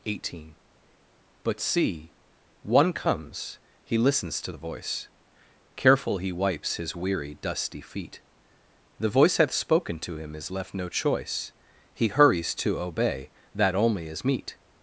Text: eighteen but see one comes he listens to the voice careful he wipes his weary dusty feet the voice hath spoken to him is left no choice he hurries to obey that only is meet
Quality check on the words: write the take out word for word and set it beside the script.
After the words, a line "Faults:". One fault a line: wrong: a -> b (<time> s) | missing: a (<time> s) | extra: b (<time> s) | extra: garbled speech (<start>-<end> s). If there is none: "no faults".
eighteen but see one comes he listens to the voice careful he wipes his weary dusty feet the voice hath spoken to him is left no choice he hurries to obey that only is meet
Faults:
no faults